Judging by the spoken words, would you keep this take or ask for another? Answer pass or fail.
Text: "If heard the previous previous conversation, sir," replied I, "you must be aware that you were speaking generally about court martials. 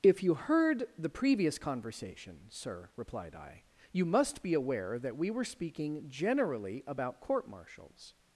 fail